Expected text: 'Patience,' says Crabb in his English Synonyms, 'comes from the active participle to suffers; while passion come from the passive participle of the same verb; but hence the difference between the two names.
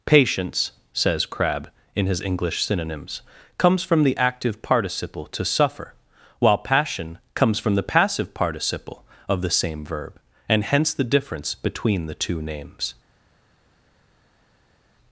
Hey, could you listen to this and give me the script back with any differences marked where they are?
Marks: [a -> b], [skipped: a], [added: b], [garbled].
'Patience,' says Crabb in his English Synonyms, 'comes from the active participle to [suffers; -> suffer] while passion [come -> comes] from the passive participle of the same verb; [but -> and] hence the difference between the two names.